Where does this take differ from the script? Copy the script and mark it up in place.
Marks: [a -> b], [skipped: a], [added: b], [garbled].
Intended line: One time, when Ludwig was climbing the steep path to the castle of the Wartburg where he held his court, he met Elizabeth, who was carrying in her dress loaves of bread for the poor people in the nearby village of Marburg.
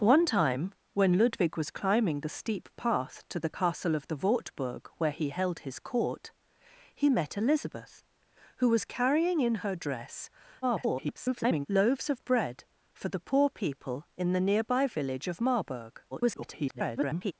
One time, when Ludwig was climbing the steep path to the castle of the Wartburg where he held his court, he met Elizabeth, who was carrying in her dress [garbled] loaves of bread for the poor people in the nearby village of Marburg. [garbled]